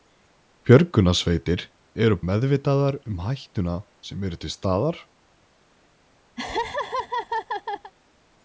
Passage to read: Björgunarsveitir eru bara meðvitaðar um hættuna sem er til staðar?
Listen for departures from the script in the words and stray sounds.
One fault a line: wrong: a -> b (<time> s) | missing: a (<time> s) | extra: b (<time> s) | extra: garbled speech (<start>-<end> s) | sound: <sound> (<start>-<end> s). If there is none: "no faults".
missing: bara (2.2 s)
sound: laugh (6.4-7.9 s)